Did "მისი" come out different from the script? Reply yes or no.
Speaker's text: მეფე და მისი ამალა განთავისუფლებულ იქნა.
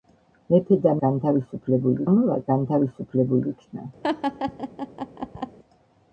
yes